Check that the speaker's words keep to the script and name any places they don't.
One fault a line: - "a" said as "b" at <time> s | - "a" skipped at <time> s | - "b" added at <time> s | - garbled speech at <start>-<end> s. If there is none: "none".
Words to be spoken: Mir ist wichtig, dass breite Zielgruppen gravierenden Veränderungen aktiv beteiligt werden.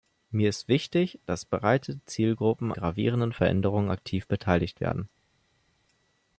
none